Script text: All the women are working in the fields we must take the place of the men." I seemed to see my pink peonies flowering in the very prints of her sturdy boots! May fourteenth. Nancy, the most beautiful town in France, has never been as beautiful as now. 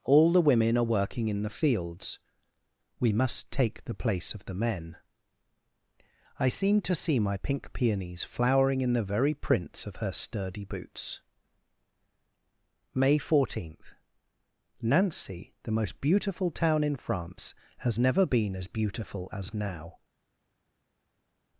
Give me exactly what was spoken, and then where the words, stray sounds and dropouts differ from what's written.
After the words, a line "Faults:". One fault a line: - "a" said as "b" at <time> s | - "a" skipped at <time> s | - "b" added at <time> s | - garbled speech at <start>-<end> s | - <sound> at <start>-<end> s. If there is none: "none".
All the women are working in the fields we must take the place of the men." I seemed to see my pink peonies flowering in the very prints of her sturdy boots! May fourteenth. Nancy, the most beautiful town in France, has never been as beautiful as now.
Faults:
none